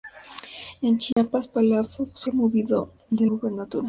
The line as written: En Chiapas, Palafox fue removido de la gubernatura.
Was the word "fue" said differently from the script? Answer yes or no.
yes